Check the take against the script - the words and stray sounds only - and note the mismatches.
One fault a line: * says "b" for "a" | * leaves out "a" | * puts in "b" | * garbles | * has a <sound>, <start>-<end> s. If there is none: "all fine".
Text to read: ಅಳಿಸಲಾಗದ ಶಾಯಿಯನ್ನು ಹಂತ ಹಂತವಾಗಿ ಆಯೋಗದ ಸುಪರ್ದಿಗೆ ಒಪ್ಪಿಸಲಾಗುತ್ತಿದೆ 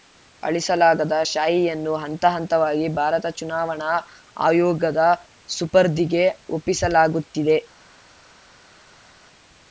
* puts in "ಭಾರತ ಚುನಾವಣಾ"